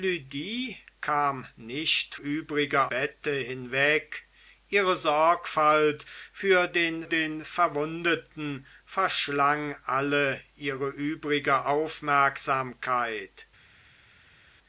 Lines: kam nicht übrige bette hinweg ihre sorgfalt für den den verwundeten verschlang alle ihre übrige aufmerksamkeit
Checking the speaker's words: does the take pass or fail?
pass